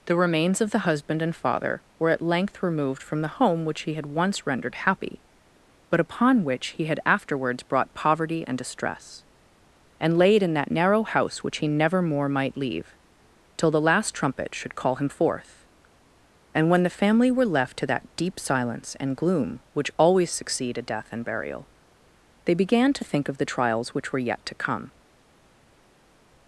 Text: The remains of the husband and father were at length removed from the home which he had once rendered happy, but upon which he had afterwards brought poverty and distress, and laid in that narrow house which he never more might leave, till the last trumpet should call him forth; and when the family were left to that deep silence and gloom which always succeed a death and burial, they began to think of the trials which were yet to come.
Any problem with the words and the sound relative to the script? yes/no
no